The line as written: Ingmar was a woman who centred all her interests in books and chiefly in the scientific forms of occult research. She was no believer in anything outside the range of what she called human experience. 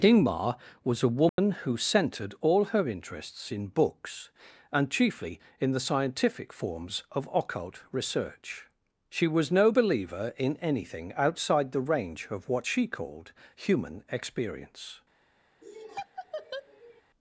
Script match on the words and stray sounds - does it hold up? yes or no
no